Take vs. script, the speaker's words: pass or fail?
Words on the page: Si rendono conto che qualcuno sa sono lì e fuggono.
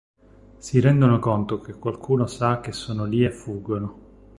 fail